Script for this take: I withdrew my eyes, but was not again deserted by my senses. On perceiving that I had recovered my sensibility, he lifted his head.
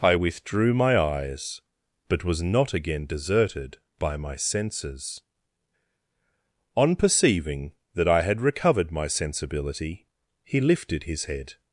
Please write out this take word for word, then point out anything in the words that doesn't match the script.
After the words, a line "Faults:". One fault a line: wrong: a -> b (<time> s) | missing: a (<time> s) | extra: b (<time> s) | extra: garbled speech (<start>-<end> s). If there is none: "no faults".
I withdrew my eyes, but was not again deserted by my senses. On perceiving that I had recovered my sensibility, he lifted his head.
Faults:
no faults